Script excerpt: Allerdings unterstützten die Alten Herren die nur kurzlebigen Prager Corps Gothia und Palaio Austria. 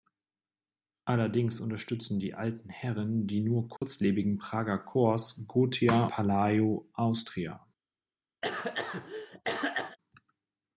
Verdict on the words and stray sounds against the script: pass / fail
fail